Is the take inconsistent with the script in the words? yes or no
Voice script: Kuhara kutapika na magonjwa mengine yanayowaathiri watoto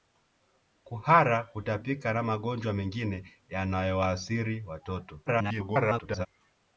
yes